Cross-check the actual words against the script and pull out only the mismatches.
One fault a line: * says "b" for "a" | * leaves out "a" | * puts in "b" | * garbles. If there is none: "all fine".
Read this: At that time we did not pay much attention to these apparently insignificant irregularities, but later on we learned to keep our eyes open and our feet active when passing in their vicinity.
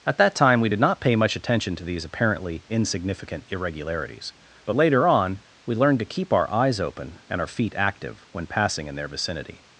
all fine